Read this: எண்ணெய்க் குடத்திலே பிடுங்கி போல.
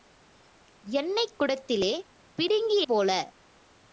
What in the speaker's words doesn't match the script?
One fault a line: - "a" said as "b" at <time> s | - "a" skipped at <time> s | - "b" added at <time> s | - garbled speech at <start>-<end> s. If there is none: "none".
none